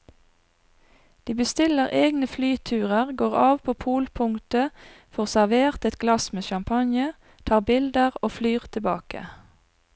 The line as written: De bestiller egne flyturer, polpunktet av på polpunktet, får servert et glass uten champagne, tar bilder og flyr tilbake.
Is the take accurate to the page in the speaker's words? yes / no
no